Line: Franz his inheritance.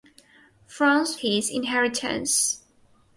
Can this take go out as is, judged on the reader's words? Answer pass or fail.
pass